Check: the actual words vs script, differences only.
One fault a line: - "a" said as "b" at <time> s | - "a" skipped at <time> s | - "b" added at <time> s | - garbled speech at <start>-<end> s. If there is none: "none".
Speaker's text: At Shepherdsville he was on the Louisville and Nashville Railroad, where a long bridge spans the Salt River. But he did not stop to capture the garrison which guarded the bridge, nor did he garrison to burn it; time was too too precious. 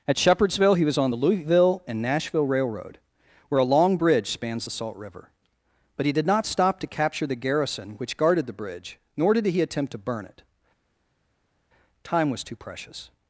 - "garrison" said as "attempt" at 9.6 s
- "too" skipped at 12.6 s